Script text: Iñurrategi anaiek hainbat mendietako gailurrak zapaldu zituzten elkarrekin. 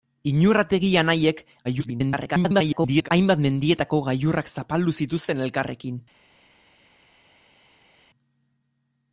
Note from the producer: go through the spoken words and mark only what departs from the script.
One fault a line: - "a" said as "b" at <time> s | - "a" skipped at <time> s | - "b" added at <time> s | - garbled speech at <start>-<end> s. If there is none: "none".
- garbled speech at 1.6-3.1 s